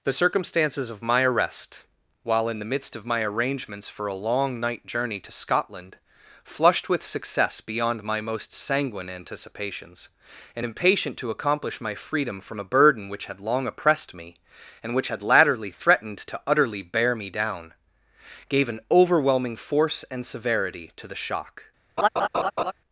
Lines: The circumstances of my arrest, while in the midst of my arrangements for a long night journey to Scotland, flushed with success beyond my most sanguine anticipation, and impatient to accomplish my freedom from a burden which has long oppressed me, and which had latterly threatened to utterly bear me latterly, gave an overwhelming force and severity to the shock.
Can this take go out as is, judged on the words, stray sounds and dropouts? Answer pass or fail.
fail